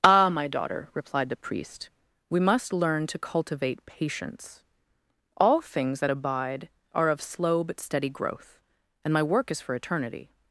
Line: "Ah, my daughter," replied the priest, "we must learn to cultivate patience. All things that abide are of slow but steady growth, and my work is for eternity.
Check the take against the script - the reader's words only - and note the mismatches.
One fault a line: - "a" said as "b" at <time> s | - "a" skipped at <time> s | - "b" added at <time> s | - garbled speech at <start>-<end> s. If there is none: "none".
none